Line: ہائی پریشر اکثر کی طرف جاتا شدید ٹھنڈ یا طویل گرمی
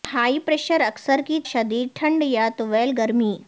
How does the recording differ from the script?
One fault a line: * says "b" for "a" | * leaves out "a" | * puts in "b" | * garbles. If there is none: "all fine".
* leaves out "طرف جاتا"